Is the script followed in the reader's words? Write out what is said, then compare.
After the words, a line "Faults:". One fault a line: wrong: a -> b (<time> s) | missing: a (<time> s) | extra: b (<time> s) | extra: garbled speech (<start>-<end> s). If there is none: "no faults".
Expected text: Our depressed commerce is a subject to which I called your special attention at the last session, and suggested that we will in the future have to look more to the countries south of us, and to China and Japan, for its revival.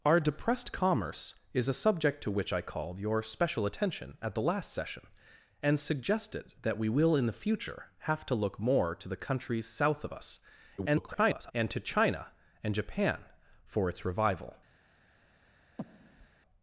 Our depressed commerce is a subject to which I called your special attention at the last session, and suggested that we will in the future have to look more to the countries south of us, [garbled] and to China and Japan, for its revival.
Faults:
extra: garbled speech (10.8-11.5 s)